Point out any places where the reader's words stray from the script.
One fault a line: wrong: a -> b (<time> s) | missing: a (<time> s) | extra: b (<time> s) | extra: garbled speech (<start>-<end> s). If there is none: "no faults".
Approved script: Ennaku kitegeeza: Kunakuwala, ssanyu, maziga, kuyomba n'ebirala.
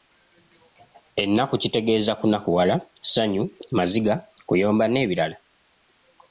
no faults